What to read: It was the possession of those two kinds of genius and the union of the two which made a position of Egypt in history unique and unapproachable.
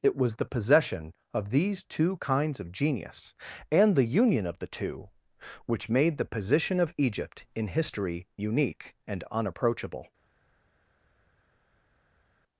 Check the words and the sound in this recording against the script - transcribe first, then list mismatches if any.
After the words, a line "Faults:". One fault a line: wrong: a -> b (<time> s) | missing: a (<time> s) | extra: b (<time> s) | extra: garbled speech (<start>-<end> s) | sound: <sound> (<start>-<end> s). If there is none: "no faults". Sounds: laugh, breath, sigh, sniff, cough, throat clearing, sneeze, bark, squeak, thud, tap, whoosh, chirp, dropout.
It was the possession of these two kinds of genius and the union of the two which made the position of Egypt in history unique and unapproachable.
Faults:
wrong: those -> these (1.5 s)
wrong: a -> the (6.2 s)